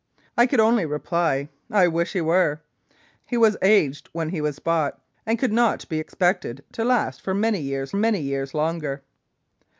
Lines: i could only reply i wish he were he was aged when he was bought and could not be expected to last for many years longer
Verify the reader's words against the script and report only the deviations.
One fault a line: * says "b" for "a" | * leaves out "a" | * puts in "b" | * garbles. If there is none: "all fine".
* puts in "many years"